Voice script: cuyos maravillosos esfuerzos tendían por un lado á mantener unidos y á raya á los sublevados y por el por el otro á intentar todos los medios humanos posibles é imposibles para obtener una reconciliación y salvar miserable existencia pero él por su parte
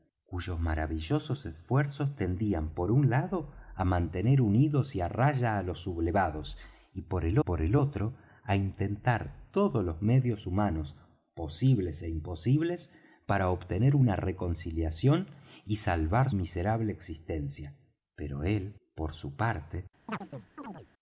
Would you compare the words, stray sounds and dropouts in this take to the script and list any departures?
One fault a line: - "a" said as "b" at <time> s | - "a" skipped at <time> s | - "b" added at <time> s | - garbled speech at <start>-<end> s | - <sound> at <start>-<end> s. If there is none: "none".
- chirp at 20.1-20.9 s